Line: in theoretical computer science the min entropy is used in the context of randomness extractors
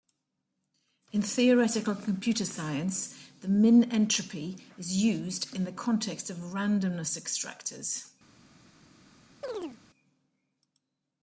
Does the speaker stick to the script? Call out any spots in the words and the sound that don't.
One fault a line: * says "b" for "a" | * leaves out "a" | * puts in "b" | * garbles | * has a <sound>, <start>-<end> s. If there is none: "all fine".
* has a chirp, 9.4-9.8 s